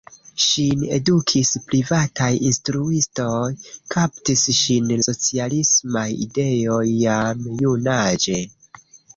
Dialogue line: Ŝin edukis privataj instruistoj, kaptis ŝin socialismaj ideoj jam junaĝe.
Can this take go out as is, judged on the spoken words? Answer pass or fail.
pass